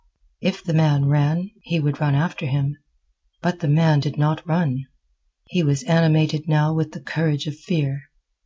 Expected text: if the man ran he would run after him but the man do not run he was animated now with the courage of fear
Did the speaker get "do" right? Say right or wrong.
wrong